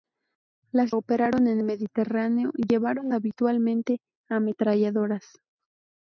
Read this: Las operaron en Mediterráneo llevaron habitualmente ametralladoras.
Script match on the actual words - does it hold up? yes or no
yes